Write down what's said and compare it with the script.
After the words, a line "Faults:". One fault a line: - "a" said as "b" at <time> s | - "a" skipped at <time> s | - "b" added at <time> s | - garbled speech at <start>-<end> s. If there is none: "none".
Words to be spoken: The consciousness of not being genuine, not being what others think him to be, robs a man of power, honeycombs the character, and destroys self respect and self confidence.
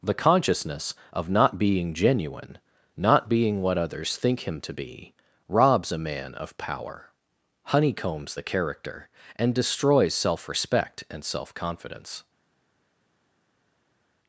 The consciousness of not being genuine, not being what others think him to be, robs a man of power, honeycombs the character, and destroys self respect and self confidence.
Faults:
none